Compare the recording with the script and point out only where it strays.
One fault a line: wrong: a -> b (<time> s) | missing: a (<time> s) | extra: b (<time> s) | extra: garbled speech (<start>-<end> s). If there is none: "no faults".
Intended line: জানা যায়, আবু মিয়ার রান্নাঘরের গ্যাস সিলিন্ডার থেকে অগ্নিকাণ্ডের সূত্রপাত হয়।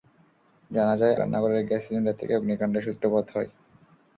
missing: আবু মিয়ার (1.1 s)